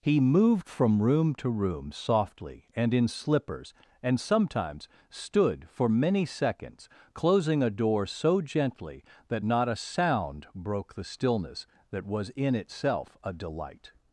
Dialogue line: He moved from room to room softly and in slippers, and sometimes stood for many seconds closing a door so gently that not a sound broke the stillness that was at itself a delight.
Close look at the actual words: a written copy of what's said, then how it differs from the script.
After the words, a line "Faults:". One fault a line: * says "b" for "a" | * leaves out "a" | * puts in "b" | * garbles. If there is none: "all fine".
He moved from room to room softly and in slippers, and sometimes stood for many seconds closing a door so gently that not a sound broke the stillness that was in itself a delight.
Faults:
* says "in" for "at"